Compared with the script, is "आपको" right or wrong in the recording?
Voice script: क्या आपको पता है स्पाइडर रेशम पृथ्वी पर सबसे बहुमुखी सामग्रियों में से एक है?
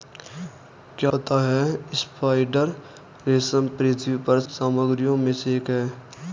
wrong